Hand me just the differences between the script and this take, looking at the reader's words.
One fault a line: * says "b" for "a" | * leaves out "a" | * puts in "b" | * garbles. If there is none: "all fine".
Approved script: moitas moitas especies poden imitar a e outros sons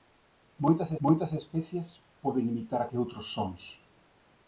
all fine